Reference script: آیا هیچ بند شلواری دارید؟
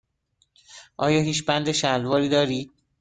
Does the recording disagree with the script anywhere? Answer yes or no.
no